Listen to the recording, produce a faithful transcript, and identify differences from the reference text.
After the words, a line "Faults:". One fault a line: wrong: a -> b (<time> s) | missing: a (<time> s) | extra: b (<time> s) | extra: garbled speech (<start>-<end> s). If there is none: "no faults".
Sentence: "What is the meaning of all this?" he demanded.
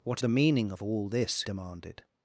"What the meaning of all this?" demanded.
Faults:
missing: is (0.2 s)
missing: he (1.4 s)